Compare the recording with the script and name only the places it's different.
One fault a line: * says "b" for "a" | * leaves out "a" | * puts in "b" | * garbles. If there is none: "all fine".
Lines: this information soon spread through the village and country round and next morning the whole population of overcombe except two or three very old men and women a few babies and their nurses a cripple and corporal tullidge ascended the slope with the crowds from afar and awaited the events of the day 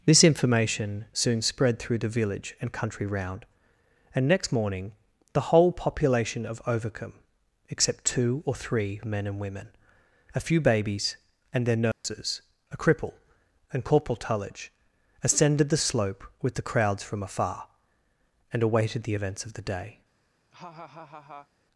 * leaves out "very old"